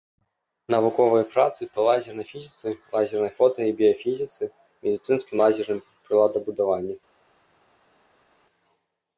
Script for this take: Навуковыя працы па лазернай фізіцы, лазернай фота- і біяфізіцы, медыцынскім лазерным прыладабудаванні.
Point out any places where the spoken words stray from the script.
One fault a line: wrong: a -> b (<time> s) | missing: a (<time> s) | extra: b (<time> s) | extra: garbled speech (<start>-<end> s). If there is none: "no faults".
no faults